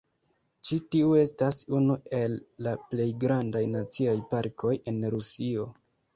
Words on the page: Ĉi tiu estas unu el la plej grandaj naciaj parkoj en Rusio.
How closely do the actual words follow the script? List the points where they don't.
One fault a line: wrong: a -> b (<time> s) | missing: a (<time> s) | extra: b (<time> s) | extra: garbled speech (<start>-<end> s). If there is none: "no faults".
no faults